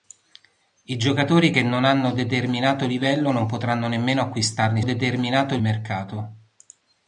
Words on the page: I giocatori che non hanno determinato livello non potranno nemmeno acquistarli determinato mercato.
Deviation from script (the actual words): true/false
false